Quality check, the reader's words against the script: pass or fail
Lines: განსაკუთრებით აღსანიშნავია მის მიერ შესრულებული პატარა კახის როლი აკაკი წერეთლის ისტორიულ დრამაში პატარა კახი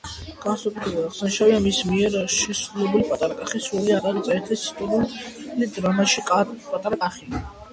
pass